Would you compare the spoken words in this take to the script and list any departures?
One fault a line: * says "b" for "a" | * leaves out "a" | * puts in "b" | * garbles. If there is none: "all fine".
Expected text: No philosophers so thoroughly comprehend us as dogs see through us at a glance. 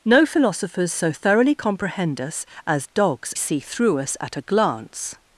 all fine